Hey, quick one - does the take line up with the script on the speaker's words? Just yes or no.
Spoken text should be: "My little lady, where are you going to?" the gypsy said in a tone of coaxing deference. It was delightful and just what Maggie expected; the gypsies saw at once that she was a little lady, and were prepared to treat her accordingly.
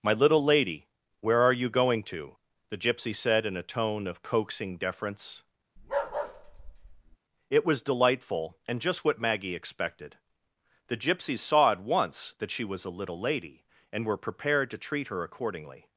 yes